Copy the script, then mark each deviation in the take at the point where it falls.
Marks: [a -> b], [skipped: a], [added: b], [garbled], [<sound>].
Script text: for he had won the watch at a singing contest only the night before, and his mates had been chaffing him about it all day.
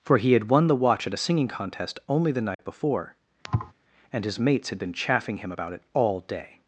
for he had won the watch at a singing contest only the night [dropout] before, [thud] and his mates had been chaffing him about it all day.